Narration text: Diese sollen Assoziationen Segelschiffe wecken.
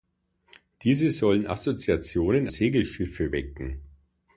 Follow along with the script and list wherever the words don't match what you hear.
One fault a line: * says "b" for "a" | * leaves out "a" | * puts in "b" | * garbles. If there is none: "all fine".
all fine